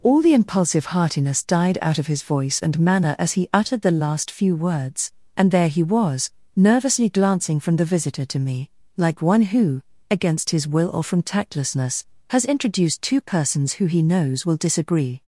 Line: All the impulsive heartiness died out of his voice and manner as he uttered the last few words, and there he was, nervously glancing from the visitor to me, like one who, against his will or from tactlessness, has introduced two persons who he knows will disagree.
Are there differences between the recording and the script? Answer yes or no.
no